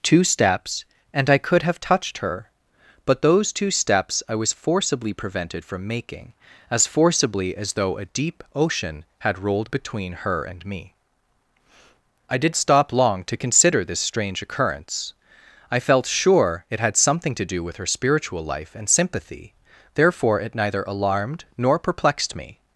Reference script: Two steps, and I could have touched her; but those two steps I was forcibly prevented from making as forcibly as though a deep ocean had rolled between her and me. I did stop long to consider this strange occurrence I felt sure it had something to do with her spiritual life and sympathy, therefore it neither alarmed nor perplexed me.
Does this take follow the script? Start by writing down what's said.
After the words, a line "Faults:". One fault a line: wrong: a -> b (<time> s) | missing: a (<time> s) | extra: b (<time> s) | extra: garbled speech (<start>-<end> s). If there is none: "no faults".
Two steps, and I could have touched her; but those two steps I was forcibly prevented from making as forcibly as though a deep ocean had rolled between her and me. I did stop long to consider this strange occurrence I felt sure it had something to do with her spiritual life and sympathy, therefore it neither alarmed nor perplexed me.
Faults:
no faults